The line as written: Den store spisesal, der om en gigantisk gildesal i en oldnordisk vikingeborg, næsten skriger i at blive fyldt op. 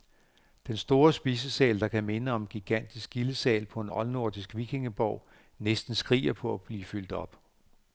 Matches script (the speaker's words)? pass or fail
fail